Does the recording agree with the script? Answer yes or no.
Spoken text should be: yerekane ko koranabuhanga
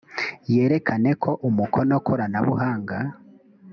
no